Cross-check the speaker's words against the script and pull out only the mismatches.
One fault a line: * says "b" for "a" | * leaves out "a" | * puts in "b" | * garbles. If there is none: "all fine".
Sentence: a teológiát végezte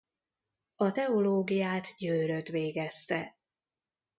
* puts in "győrött"